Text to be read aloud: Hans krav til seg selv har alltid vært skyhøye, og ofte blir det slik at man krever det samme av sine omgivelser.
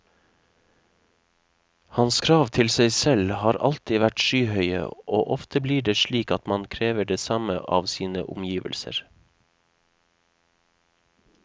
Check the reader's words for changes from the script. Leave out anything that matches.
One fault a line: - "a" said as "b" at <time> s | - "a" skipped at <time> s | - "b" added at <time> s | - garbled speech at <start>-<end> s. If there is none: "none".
none